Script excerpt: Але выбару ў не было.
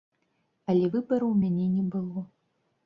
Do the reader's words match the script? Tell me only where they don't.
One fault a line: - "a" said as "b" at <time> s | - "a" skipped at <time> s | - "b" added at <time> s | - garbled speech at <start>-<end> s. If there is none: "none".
- "мяне" added at 1.5 s